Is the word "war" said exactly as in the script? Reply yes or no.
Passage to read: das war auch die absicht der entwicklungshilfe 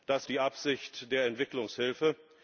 no